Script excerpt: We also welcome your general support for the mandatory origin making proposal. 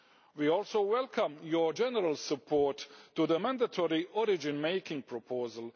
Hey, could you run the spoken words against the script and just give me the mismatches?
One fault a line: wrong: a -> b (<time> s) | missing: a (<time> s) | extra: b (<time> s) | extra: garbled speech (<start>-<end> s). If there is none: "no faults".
no faults